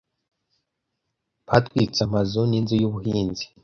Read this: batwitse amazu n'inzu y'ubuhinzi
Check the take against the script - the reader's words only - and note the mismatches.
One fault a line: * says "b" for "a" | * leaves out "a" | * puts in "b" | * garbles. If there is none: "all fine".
all fine